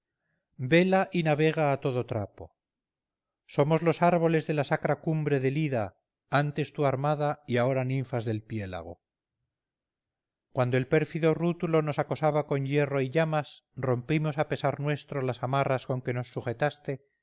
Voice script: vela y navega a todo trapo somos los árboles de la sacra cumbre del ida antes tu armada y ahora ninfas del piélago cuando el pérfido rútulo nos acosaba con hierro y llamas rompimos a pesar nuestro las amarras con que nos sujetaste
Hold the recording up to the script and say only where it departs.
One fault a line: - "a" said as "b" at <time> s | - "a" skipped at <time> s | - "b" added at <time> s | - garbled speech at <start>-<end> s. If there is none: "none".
none